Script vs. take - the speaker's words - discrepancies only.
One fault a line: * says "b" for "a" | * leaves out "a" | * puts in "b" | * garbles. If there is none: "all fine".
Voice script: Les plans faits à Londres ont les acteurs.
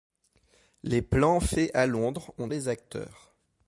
all fine